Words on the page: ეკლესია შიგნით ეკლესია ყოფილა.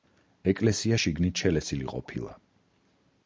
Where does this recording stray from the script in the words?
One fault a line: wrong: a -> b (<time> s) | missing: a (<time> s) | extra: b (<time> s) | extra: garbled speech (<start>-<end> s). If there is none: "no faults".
wrong: ეკლესია -> შელესილი (1.4 s)